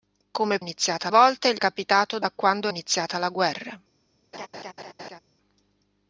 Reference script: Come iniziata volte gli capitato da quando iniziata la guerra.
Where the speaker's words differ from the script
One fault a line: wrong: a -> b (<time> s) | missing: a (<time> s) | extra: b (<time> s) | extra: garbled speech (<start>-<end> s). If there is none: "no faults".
no faults